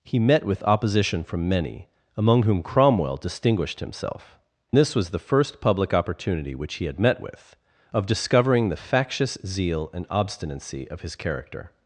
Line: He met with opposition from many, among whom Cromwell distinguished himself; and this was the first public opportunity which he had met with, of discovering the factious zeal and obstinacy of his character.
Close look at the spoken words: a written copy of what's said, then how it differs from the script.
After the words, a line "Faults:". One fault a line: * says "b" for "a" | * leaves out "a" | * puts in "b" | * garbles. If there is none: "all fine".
He met with opposition from many, among whom Cromwell distinguished himself; this was the first public opportunity which he had met with, of discovering the factious zeal and obstinacy of his character.
Faults:
* leaves out "and"